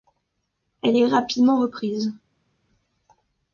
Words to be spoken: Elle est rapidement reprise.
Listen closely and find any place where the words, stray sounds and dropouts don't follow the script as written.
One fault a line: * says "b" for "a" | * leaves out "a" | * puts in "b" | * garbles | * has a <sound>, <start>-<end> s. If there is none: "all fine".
all fine